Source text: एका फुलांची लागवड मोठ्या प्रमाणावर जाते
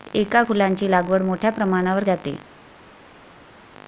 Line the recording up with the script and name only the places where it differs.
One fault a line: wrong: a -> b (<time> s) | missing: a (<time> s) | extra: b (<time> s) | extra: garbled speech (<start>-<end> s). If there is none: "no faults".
no faults